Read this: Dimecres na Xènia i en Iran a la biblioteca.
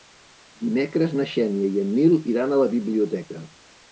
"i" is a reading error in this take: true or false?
false